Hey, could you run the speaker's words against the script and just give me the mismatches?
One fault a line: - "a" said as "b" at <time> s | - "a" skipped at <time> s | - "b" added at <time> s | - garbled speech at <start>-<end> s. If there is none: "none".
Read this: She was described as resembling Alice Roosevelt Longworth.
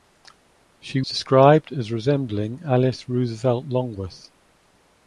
- "was" skipped at 1.0 s